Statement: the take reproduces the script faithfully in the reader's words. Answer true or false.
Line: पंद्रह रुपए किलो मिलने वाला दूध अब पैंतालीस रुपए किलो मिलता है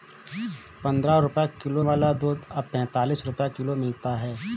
false